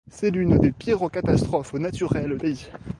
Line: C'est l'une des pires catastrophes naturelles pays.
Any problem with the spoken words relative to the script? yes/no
no